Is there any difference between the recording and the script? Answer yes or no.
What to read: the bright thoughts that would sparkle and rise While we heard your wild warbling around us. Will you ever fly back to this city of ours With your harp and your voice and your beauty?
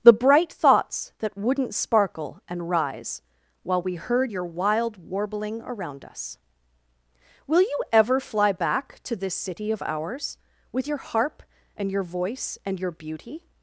yes